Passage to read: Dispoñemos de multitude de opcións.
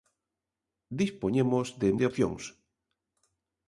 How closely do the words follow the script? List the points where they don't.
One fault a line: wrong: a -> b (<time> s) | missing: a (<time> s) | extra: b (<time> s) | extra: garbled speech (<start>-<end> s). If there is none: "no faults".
missing: multitude (1.9 s)